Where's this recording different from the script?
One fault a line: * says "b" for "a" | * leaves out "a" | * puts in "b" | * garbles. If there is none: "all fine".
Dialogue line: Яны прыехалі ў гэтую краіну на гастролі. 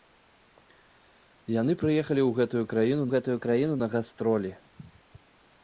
* puts in "гэтую краіну"